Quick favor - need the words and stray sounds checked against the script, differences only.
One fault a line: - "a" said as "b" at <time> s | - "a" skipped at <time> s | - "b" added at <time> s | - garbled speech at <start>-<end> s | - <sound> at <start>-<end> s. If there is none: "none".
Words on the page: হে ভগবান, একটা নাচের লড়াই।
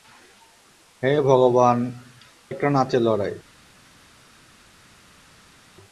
none